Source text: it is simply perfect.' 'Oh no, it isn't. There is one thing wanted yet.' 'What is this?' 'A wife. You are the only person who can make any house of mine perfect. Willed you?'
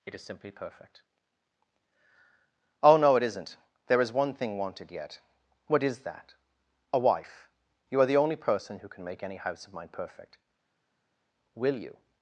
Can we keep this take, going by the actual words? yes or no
no